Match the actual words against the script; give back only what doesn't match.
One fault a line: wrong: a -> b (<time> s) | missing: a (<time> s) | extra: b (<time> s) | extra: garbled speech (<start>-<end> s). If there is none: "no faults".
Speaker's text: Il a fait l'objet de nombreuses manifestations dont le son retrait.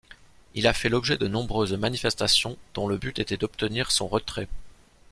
extra: but était d'obtenir (2.9 s)